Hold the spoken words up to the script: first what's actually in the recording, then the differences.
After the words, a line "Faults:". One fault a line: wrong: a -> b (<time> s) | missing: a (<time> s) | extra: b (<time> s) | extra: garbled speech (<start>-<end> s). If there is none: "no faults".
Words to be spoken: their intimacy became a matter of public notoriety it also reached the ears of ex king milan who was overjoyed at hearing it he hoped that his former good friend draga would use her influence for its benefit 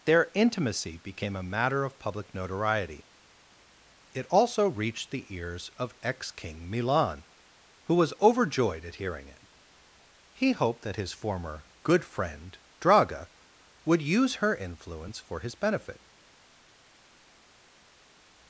their intimacy became a matter of public notoriety it also reached the ears of ex king milan who was overjoyed at hearing it he hoped that his former good friend draga would use her influence for his benefit
Faults:
wrong: its -> his (15.4 s)